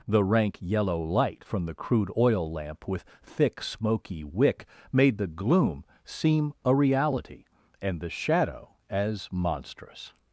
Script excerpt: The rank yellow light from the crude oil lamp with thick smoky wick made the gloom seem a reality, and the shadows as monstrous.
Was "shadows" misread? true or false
true